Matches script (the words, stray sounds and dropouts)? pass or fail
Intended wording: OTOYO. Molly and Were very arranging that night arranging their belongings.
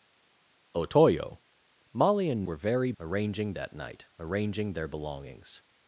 pass